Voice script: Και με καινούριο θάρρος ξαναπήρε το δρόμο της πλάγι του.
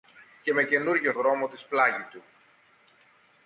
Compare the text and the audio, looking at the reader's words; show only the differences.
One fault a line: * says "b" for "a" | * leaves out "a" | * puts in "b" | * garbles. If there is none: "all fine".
* leaves out "θάρρος ξαναπήρε το"